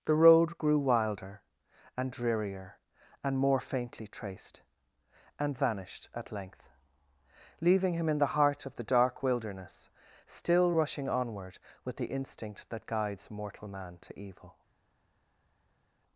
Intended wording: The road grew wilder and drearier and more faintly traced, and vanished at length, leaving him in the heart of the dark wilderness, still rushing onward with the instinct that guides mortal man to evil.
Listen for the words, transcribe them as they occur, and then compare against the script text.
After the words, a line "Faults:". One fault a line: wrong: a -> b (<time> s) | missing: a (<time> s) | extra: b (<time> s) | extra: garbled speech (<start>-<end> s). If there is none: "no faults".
The road grew wilder and drearier and more faintly traced, and vanished at length, leaving him in the heart of the dark wilderness, still rushing onward with the instinct that guides mortal man to evil.
Faults:
no faults